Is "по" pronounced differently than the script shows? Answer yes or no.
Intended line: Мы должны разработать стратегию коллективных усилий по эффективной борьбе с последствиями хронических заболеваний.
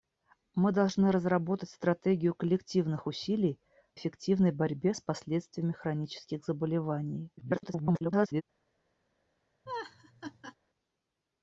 yes